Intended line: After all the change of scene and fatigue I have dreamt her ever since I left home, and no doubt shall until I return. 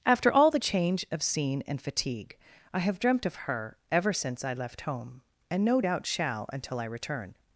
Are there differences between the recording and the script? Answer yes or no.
yes